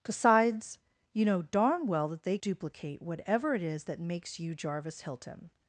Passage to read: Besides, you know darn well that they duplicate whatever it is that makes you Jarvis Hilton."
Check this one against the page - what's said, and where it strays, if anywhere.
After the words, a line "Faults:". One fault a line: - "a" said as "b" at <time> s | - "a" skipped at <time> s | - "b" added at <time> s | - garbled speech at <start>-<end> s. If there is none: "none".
Besides, you know darn well that they duplicate whatever it is that makes you Jarvis Hilton."
Faults:
none